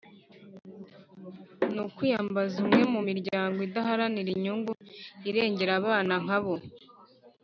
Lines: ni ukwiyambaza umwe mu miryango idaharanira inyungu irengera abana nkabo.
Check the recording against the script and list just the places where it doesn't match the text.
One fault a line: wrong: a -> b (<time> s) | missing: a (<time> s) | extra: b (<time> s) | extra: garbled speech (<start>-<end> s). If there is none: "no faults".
no faults